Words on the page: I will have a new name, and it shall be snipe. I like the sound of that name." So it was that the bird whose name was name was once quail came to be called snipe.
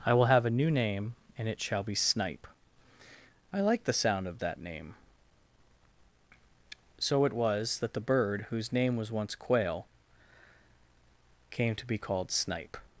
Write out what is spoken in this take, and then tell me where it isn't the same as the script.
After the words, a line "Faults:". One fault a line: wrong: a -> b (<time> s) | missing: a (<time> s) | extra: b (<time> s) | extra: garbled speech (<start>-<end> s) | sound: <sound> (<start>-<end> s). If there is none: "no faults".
I will have a new name, and it shall be snipe. I like the sound of that name." So it was that the bird whose name was once quail came to be called snipe.
Faults:
missing: name was (9.1 s)